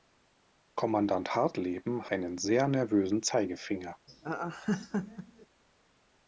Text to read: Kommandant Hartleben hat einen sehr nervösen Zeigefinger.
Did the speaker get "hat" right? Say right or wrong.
wrong